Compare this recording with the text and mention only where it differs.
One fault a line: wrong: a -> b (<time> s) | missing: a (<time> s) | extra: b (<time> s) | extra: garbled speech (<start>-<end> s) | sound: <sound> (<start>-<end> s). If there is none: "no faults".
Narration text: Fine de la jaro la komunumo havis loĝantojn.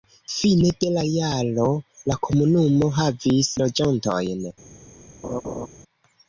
sound: laugh (5.2-5.7 s)